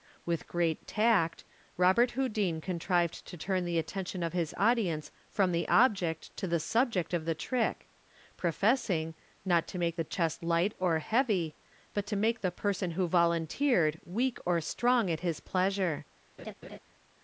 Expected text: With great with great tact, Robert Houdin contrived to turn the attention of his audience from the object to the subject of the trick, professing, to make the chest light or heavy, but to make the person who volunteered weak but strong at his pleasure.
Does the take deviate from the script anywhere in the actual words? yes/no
yes